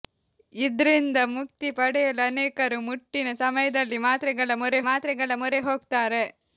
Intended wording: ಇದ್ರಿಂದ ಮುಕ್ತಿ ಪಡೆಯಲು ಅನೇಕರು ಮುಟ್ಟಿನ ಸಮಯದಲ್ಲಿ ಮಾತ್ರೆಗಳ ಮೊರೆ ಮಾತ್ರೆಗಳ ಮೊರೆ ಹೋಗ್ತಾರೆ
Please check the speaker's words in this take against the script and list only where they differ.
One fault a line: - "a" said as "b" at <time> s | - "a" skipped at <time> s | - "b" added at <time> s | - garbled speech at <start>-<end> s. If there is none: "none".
none